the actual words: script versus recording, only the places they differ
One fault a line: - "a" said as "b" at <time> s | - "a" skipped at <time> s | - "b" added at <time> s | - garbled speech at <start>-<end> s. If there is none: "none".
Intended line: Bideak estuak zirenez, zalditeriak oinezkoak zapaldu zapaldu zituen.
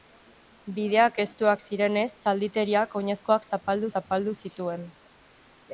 none